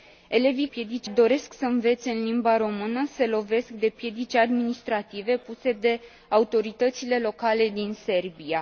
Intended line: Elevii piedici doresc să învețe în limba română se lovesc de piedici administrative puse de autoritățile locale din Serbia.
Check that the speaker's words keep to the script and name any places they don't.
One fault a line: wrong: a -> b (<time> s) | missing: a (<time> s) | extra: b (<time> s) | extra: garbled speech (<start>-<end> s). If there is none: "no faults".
no faults